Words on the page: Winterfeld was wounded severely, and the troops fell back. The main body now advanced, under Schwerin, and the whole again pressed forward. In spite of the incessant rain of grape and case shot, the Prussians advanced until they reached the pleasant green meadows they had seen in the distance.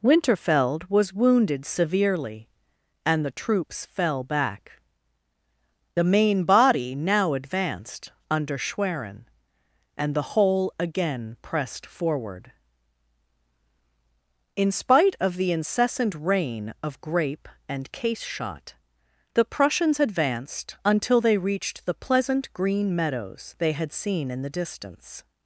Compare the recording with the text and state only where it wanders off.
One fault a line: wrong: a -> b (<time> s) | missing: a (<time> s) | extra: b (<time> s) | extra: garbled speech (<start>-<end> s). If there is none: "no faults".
no faults